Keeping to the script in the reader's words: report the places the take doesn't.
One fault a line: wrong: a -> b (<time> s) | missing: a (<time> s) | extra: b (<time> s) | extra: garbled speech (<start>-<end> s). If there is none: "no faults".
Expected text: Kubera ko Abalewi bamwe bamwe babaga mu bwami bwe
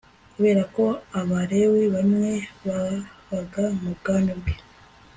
missing: bamwe (2.3 s)